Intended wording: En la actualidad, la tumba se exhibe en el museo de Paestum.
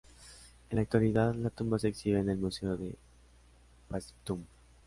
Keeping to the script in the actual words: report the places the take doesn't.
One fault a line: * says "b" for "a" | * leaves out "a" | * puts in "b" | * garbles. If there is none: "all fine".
all fine